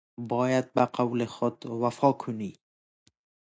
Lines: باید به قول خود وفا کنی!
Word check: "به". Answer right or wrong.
right